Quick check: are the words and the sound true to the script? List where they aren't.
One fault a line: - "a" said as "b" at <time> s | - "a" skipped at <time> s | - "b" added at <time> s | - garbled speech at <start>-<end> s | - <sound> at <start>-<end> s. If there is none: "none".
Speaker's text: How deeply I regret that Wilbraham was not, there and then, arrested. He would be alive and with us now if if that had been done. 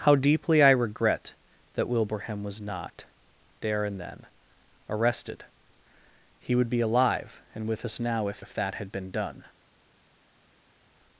none